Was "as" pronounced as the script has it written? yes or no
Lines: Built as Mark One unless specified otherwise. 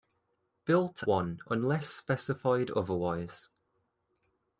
no